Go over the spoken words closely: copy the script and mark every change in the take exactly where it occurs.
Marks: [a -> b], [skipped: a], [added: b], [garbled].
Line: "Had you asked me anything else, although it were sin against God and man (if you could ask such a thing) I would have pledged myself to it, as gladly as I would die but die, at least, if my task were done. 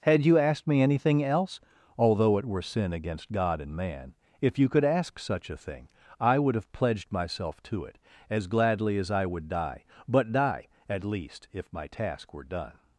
"Had you asked me anything else, although it were sin against God and man (if you could ask such a thing) I would have pledged myself to it, as gladly as I would die but die, at least, if my task were done.